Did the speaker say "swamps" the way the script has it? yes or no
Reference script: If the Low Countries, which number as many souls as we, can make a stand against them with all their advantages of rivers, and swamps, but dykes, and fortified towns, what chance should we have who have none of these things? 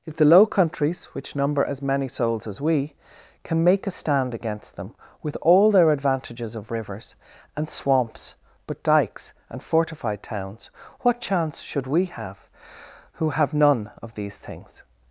yes